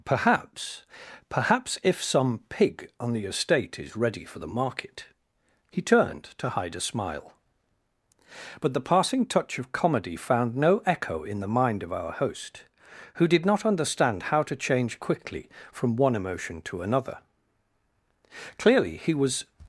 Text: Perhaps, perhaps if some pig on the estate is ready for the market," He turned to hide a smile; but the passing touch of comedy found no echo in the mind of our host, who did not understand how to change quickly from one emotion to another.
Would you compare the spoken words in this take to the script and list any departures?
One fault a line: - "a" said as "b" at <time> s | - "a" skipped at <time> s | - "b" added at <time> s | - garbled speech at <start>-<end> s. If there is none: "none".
- "Clearly he was" added at 18.6 s